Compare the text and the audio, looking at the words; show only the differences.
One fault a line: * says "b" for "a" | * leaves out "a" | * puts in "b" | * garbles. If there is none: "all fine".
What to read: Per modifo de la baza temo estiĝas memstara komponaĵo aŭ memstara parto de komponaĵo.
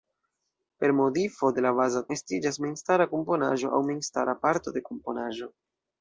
* leaves out "temo"